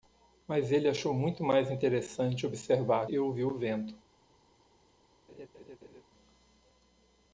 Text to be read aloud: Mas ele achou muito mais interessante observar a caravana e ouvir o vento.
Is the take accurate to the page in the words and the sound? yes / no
no